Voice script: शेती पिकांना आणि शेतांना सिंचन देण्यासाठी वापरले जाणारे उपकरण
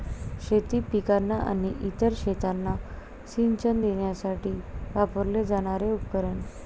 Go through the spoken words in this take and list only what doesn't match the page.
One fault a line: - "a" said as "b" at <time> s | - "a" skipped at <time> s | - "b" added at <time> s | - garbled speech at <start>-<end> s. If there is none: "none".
- "इतर" added at 1.8 s